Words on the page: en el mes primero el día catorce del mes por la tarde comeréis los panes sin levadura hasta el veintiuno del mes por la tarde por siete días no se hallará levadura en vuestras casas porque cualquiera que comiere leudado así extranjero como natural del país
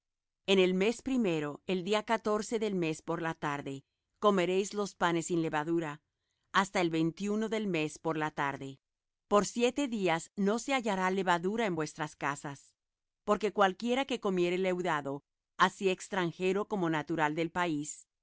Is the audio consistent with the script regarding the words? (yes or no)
yes